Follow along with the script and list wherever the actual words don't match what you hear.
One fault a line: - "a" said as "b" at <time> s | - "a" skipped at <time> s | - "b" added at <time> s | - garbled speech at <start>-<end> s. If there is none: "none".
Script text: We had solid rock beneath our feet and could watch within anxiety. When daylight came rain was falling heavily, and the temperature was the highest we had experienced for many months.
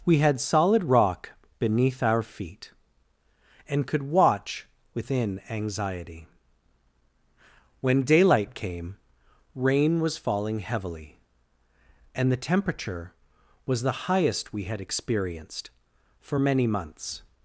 none